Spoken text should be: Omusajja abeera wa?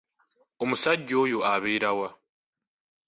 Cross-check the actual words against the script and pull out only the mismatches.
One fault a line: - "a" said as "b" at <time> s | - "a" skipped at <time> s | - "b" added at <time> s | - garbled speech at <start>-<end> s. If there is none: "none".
- "oyo" added at 1.2 s